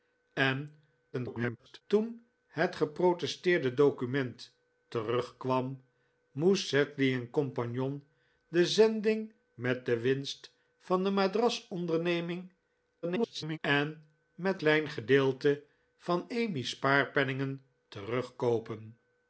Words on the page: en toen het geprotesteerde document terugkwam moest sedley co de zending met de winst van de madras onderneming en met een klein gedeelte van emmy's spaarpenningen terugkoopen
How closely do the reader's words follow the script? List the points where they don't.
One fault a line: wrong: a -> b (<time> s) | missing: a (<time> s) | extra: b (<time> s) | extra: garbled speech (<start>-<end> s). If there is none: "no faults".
extra: garbled speech (1.1-1.8 s)
extra: garbled speech (13.0-13.6 s)
missing: een (14.6 s)